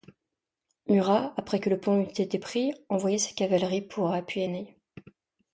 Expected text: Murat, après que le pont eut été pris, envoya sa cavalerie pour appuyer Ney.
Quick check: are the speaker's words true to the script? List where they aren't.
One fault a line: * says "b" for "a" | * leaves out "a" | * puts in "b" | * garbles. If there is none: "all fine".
all fine